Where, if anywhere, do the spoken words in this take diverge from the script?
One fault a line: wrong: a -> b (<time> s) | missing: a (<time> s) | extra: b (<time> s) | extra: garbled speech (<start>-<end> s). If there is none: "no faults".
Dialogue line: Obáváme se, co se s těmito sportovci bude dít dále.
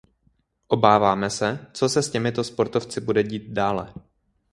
no faults